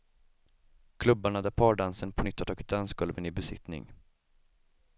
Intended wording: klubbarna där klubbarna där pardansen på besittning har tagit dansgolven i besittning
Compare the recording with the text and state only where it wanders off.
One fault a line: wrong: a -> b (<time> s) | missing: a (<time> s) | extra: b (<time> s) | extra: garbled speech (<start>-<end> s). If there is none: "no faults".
missing: klubbarna där (1.5 s)
wrong: besittning -> nytt (2.2 s)